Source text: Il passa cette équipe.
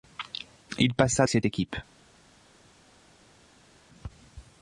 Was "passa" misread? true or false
false